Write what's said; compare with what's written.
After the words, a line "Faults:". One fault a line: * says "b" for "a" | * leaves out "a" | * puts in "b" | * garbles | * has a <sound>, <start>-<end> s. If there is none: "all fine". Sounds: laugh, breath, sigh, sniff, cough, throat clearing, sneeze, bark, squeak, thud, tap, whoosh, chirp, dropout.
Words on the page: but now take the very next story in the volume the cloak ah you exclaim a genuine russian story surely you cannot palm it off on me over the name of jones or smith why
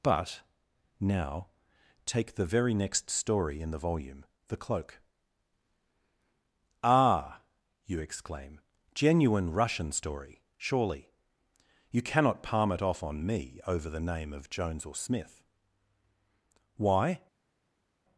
but now take the very next story in the volume the cloak ah you exclaim genuine russian story surely you cannot palm it off on me over the name of jones or smith why
Faults:
* leaves out "a"